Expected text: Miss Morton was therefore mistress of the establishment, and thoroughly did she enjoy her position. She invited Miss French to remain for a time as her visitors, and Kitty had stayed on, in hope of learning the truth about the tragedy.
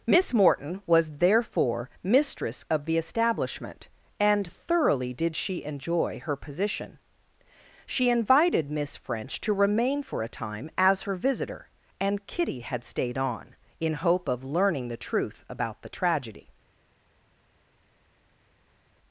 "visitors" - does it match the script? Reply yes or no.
no